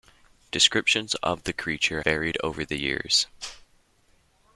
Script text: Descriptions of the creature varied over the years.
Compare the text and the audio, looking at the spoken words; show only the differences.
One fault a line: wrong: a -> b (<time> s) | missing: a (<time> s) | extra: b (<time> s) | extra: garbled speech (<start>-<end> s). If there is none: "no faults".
no faults